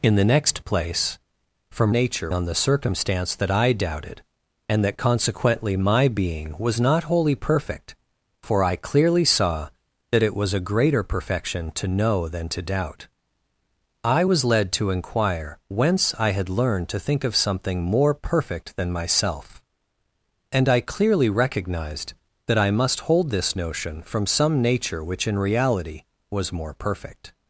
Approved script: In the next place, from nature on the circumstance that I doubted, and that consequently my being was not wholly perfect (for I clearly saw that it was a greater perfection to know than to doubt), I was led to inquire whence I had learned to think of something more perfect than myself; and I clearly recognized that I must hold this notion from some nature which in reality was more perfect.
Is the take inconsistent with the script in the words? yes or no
no